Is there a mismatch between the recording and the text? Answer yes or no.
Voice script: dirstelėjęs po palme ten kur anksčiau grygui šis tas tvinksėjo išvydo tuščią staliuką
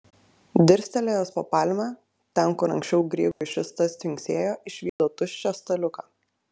no